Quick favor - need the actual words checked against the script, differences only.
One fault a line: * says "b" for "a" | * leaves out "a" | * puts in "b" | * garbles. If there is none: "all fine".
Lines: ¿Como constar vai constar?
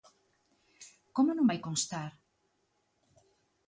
* says "non" for "constar"